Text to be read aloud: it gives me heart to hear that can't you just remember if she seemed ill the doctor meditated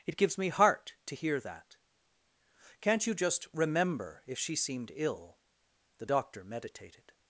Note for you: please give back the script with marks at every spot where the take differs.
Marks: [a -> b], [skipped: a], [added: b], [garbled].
it gives me heart to hear that can't you just remember if she seemed ill the doctor meditated